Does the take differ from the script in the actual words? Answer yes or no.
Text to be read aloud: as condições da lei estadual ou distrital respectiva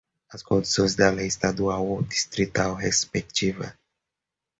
no